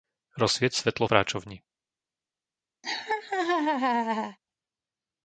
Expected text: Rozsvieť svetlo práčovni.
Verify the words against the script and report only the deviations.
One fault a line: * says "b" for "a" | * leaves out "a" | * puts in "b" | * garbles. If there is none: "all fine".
all fine